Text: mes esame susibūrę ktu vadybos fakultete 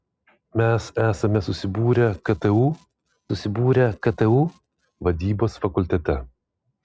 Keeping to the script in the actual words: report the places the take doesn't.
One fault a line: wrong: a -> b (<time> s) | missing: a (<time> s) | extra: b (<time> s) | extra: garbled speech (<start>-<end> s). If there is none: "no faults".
extra: susibūrę ktu (3.3 s)